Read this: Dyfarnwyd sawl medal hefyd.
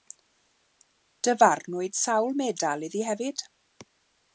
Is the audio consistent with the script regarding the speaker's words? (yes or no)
no